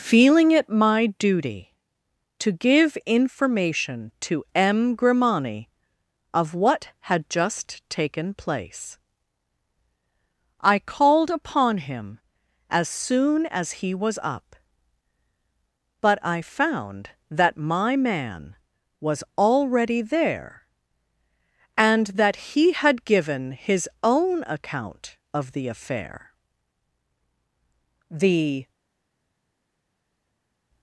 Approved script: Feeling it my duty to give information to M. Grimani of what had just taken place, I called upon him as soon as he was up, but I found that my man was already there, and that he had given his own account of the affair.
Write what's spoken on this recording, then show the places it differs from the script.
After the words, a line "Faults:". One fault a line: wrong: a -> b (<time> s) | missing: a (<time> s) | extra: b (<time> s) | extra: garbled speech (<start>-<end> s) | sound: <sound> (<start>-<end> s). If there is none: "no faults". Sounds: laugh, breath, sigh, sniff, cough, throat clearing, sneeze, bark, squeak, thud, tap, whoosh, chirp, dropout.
Feeling it my duty to give information to M. Grimani of what had just taken place, I called upon him as soon as he was up, but I found that my man was already there, and that he had given his own account of the affair. The
Faults:
extra: The (28.1 s)